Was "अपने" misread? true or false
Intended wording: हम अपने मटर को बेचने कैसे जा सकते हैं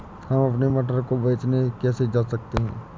false